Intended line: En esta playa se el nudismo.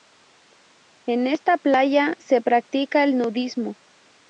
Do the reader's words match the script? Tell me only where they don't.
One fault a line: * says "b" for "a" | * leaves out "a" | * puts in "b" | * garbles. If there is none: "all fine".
* puts in "practica"